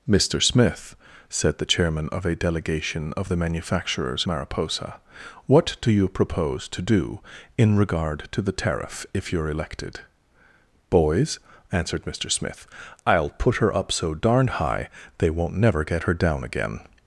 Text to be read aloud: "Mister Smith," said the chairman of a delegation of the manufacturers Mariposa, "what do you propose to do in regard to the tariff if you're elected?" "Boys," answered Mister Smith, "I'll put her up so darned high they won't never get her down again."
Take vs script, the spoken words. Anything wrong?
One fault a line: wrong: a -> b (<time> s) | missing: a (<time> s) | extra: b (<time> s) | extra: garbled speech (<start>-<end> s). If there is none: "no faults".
no faults